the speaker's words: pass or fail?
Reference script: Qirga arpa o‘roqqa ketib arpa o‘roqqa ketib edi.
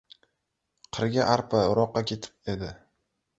fail